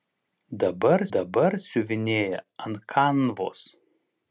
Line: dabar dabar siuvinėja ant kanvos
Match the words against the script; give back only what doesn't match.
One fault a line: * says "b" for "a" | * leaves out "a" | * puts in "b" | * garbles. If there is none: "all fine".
all fine